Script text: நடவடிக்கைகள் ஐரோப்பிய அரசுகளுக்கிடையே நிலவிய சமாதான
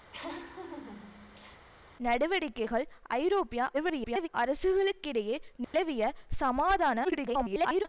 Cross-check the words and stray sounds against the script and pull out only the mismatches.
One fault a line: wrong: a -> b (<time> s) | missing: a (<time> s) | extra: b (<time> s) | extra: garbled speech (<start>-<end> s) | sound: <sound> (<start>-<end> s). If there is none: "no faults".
sound: laugh (0.1-1.7 s)
extra: garbled speech (3.7-4.3 s)
sound: dropout (5.6-5.7 s)
extra: garbled speech (7.0-7.9 s)